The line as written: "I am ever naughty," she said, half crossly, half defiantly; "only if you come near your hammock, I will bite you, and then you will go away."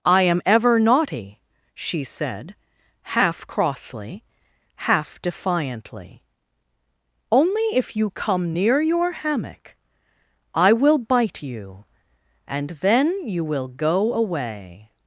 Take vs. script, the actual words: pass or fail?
pass